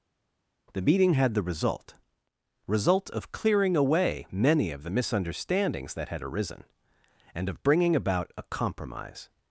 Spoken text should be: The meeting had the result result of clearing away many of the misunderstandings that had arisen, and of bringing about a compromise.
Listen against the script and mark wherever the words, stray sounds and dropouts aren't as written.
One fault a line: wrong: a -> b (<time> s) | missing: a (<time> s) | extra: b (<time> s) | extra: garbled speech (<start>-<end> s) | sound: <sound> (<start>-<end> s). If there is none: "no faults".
no faults